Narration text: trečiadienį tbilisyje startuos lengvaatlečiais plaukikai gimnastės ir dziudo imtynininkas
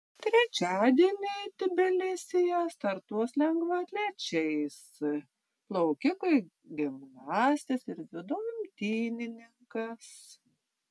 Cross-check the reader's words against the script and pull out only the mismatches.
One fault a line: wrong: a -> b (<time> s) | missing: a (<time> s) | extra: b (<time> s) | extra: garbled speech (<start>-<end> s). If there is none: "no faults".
no faults